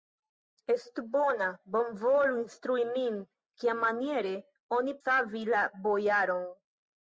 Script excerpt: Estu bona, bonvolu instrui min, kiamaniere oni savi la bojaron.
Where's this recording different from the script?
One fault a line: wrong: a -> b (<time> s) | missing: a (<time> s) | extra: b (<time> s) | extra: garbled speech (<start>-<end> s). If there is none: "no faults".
no faults